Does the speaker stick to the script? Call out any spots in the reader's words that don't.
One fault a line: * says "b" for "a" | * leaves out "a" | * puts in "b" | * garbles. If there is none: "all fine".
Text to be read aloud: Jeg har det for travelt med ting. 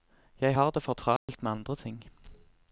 * puts in "andre"